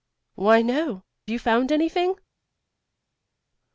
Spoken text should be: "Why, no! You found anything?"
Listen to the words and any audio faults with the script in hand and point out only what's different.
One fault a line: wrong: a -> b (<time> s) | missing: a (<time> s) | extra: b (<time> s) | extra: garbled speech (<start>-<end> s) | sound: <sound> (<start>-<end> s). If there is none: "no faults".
no faults